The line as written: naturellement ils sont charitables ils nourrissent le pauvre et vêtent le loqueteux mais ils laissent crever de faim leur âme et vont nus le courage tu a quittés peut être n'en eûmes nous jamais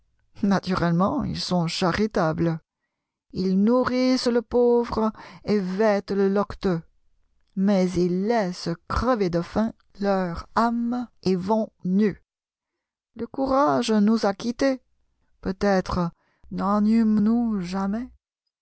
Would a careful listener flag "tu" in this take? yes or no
yes